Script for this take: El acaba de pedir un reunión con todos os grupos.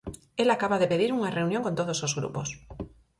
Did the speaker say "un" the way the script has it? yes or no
no